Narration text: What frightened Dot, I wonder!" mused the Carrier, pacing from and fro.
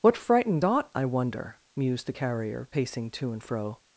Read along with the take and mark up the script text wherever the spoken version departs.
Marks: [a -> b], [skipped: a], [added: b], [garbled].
What frightened Dot, I wonder!" mused the Carrier, pacing [from -> to] and fro.